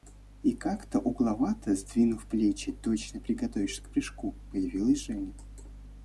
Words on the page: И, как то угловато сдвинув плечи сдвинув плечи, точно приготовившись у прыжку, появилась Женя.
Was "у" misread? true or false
true